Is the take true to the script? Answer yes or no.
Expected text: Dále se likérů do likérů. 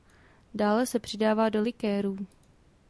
no